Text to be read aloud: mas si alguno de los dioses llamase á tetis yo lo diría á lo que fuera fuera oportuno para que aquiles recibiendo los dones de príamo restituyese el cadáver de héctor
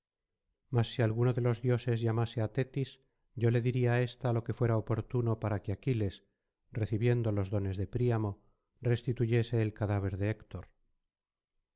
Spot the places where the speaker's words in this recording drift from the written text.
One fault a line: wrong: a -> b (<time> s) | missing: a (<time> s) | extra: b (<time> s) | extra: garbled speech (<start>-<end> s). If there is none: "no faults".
wrong: lo -> le (3.5 s)
extra: ésta (4.1 s)
missing: fuera (4.8 s)